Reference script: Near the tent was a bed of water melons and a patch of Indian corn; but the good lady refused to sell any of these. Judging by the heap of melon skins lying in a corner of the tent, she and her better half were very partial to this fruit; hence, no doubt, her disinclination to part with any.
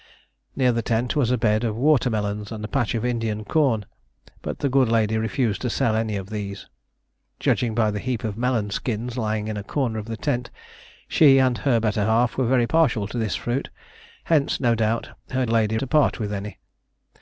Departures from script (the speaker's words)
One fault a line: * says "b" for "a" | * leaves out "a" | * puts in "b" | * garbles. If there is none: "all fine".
* says "lady" for "disinclination"